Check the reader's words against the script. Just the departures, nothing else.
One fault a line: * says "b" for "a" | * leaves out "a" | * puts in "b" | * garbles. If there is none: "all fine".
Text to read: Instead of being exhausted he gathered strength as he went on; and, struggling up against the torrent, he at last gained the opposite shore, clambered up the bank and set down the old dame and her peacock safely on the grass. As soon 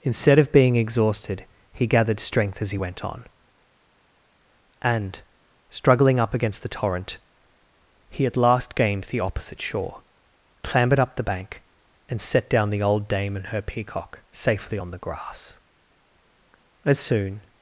all fine